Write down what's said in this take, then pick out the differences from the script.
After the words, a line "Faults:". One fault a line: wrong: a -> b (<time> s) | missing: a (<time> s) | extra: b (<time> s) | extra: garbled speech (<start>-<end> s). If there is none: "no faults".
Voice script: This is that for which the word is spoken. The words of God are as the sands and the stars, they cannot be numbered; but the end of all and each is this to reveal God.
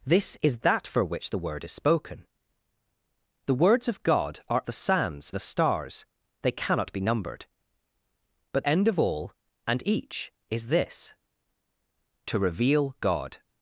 This is that for which the word is spoken. The words of God are the sands the stars, they cannot be numbered; but end of all and each is this to reveal God.
Faults:
missing: as (4.6 s)
missing: and (5.3 s)
missing: the (8.7 s)